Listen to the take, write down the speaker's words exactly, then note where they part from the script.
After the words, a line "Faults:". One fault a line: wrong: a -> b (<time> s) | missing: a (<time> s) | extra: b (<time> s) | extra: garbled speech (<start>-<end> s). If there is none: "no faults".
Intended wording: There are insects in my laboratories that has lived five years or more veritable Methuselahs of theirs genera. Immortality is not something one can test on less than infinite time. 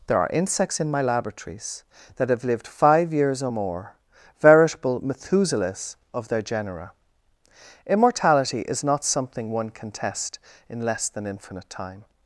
There are insects in my laboratories that have lived five years or more veritable Methuselahs of their genera. Immortality is not something one can test in less than infinite time.
Faults:
wrong: has -> have (2.3 s)
wrong: theirs -> their (6.3 s)
wrong: on -> in (10.7 s)